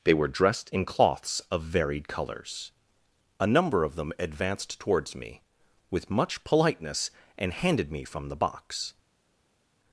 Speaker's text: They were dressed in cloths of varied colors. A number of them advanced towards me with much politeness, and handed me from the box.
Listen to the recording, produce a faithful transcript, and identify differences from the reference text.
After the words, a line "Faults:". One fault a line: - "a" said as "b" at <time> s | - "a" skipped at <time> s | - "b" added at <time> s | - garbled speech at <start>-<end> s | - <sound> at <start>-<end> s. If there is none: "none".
They were dressed in cloths of varied colors. A number of them advanced towards me with much politeness, and handed me from the box.
Faults:
none